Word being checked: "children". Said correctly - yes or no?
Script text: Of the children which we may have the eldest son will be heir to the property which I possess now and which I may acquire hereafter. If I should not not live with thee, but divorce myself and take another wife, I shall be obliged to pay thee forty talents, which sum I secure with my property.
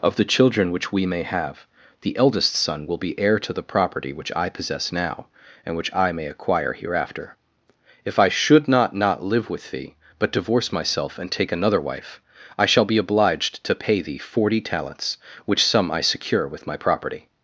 yes